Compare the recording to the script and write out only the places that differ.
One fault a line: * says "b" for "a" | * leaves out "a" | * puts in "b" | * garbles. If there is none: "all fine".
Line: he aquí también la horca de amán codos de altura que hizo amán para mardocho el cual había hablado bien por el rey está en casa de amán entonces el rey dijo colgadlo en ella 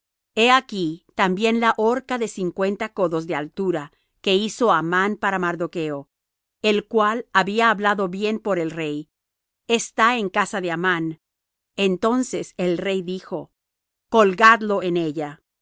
* says "cincuenta" for "amán"